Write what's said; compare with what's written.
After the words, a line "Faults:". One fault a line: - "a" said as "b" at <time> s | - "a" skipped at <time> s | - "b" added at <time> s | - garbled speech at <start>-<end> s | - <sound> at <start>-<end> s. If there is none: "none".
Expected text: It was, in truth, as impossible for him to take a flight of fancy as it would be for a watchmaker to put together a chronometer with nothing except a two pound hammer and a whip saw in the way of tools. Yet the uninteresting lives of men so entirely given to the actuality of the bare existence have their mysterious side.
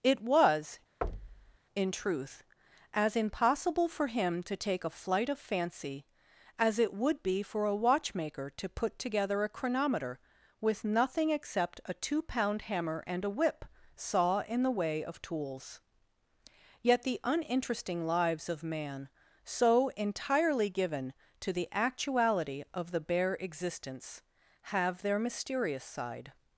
It was, in truth, as impossible for him to take a flight of fancy as it would be for a watchmaker to put together a chronometer with nothing except a two pound hammer and a whip saw in the way of tools. Yet the uninteresting lives of man so entirely given to the actuality of the bare existence have their mysterious side.
Faults:
- thud at 1.0-1.6 s
- "men" said as "man" at 18.6 s